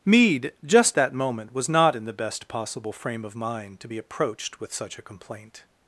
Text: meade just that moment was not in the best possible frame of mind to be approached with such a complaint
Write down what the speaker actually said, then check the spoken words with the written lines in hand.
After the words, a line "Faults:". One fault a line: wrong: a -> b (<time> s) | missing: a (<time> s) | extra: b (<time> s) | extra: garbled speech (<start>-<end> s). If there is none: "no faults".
meade just that moment was not in the best possible frame of mind to be approached with such a complaint
Faults:
no faults